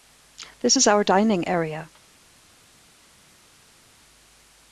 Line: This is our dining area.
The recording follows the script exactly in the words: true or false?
true